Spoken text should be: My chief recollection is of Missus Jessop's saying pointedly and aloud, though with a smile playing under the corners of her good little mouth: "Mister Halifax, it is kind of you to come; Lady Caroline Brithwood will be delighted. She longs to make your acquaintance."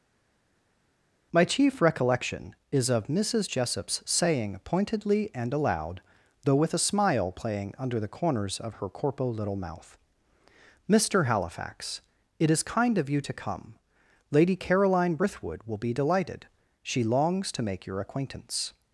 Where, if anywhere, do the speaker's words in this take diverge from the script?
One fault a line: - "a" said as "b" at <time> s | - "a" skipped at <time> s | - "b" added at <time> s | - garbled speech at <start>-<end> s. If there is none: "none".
- "good" said as "corpo" at 8.9 s